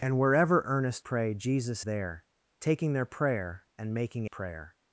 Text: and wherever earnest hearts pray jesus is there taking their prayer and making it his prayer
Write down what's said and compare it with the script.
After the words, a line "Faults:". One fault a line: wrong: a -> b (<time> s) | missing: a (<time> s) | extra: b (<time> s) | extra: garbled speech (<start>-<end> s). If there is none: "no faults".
and wherever earnest pray jesus there taking their prayer and making prayer
Faults:
missing: hearts (1.1 s)
missing: is (1.9 s)
missing: it his (4.2 s)